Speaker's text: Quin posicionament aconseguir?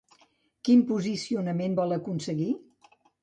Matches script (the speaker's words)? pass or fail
fail